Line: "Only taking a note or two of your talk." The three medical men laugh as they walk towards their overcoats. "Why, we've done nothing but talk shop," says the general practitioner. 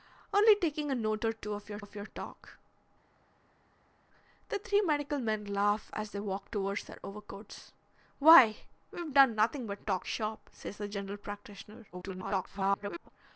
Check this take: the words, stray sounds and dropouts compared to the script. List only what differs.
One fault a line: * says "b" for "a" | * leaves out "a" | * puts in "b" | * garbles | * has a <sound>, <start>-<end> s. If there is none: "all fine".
* puts in "of your"
* garbles